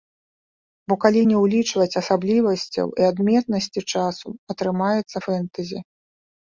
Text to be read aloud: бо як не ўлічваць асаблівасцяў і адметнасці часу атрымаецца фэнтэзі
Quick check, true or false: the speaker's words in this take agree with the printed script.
false